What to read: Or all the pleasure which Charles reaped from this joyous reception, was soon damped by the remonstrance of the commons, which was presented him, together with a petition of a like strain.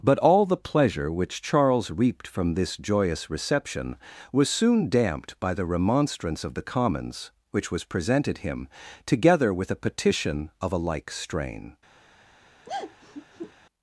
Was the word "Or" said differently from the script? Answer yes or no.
yes